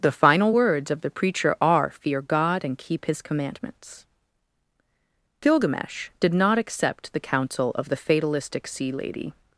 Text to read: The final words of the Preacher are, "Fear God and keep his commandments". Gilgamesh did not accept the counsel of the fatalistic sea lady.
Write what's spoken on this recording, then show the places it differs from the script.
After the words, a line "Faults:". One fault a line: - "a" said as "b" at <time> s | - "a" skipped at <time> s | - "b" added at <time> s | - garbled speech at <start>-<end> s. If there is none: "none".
The final words of the Preacher are, "Fear God and keep his commandments". Gilgamesh did not accept the counsel of the fatalistic sea lady.
Faults:
none